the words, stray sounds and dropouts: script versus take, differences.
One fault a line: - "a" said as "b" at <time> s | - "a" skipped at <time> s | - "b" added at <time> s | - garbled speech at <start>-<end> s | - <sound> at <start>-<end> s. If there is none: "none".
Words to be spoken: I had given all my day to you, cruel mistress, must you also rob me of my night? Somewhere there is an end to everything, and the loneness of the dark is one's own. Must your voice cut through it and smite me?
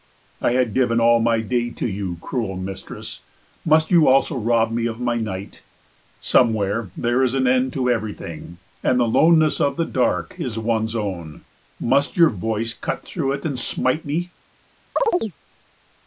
- chirp at 15.0-15.3 s